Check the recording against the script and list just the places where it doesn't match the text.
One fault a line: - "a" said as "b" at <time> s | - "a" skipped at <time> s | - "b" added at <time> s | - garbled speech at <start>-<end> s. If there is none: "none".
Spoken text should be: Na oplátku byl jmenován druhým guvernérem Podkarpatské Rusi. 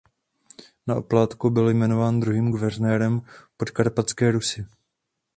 none